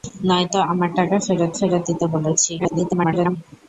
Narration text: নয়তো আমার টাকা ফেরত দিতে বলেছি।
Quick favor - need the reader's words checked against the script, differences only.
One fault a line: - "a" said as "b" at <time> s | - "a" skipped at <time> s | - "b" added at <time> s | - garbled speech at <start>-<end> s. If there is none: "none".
- "ফেরত" added at 1.6 s
- garbled speech at 2.6-3.4 s